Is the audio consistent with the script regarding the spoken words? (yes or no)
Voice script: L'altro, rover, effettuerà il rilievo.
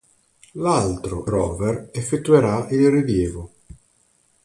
yes